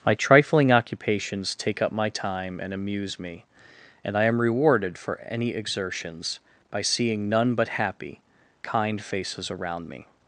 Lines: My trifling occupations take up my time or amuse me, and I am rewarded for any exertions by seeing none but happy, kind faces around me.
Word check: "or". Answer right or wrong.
wrong